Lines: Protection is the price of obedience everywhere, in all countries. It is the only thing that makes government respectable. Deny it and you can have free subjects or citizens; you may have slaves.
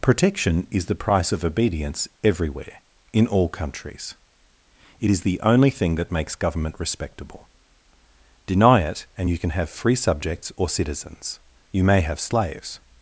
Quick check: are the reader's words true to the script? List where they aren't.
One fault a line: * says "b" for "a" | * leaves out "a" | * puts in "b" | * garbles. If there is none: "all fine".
all fine